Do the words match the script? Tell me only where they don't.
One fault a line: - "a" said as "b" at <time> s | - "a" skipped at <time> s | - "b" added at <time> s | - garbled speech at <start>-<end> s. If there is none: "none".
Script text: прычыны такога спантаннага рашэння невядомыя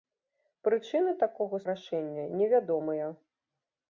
- "спантаннага" skipped at 1.6 s